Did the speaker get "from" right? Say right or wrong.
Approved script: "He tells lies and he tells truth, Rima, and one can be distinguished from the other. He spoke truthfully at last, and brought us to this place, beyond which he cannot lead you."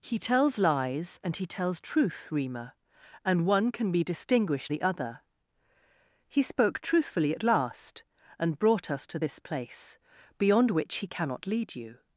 wrong